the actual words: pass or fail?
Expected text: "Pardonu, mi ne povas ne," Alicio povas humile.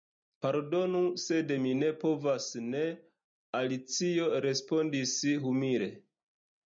fail